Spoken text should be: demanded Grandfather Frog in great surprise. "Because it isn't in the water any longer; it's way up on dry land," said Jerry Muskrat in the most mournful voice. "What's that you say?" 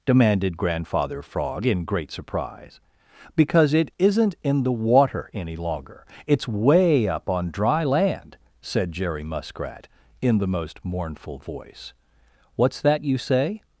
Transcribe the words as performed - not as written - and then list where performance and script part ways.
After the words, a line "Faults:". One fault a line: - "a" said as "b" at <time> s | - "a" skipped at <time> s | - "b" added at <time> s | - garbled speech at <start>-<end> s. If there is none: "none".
demanded Grandfather Frog in great surprise. "Because it isn't in the water any longer; it's way up on dry land," said Jerry Muskrat in the most mournful voice. "What's that you say?"
Faults:
none